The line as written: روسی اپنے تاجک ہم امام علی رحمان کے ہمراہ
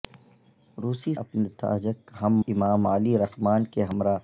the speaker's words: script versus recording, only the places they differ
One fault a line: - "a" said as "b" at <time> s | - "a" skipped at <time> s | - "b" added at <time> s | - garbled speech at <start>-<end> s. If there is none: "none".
none